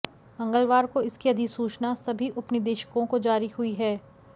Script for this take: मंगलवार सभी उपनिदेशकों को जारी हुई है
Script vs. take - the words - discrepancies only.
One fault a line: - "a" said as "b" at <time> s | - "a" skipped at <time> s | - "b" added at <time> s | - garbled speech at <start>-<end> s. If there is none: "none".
- "को इसकी अधिसूचना" added at 0.8 s